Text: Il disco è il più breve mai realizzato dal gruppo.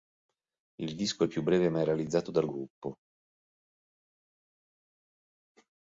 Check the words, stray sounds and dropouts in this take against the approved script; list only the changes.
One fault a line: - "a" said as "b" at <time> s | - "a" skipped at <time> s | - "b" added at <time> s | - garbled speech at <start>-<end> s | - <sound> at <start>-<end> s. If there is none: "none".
none